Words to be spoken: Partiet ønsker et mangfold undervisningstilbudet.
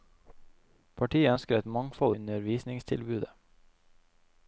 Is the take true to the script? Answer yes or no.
yes